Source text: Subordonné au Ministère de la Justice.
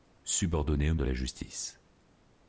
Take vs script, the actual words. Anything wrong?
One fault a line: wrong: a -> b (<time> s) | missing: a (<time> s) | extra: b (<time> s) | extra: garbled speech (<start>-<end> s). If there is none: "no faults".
missing: Ministère (0.9 s)